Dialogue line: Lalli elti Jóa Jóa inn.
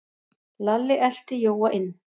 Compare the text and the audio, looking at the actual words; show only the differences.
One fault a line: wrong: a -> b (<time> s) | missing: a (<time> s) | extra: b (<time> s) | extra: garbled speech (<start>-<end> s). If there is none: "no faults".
missing: Jóa (1.7 s)